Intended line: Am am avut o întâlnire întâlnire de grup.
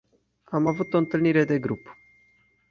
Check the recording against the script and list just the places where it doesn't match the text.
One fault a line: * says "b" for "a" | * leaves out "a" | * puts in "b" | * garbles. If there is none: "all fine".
* leaves out "am"
* leaves out "întâlnire"